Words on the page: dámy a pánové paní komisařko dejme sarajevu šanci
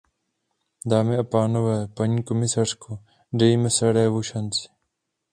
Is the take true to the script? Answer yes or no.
yes